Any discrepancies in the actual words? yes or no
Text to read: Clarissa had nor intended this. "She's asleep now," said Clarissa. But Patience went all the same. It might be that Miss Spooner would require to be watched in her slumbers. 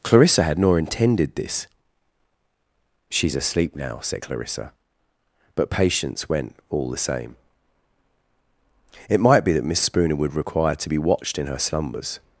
no